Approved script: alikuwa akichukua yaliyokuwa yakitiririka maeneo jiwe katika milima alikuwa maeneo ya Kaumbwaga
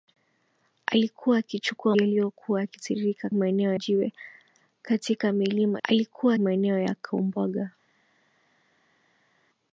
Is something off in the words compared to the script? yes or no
no